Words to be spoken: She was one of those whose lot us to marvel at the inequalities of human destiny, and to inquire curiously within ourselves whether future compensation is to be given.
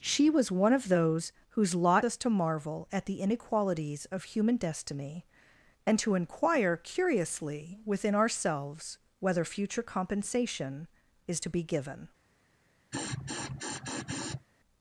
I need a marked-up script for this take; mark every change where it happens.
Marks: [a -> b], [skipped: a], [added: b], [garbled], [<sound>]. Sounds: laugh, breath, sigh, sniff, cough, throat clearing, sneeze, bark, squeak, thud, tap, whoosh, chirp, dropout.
She was one of those whose lot us to marvel at the inequalities of human destiny, and to inquire curiously within ourselves whether future compensation is to be given. [sniff]